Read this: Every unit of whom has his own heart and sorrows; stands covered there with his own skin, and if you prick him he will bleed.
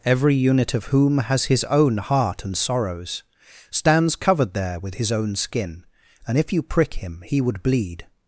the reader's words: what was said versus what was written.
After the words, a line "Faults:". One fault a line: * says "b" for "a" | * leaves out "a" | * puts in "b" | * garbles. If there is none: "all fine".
Every unit of whom has his own heart and sorrows; stands covered there with his own skin, and if you prick him he would bleed.
Faults:
* says "would" for "will"